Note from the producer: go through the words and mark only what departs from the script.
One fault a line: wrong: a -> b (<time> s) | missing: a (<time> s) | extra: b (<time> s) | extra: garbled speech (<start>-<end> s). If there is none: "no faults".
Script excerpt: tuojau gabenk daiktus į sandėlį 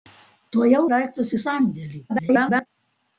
missing: gabenk (0.8 s)
extra: garbled speech (2.1-2.7 s)